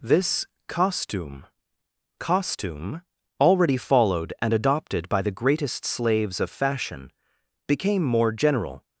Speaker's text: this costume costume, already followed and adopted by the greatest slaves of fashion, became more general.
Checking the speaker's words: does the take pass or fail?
pass